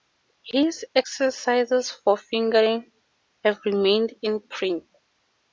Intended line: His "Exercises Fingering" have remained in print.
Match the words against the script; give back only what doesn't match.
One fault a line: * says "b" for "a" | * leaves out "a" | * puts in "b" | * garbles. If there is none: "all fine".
* puts in "for"